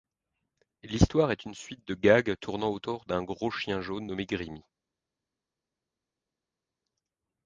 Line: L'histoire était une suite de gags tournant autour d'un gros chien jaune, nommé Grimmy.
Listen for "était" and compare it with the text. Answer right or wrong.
wrong